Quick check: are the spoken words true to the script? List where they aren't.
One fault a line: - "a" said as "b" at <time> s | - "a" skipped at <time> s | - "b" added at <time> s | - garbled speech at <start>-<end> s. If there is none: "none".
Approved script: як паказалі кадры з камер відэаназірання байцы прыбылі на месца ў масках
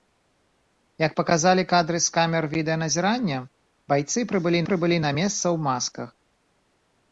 - "прыбылі" added at 4.7 s